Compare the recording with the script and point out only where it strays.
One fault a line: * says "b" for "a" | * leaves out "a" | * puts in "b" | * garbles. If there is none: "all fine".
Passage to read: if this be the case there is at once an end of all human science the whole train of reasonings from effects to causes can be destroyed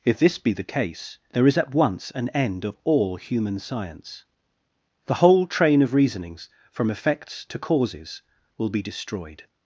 * says "will" for "can"